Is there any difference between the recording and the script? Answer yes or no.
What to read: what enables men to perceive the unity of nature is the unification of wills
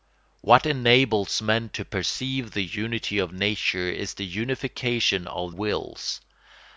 no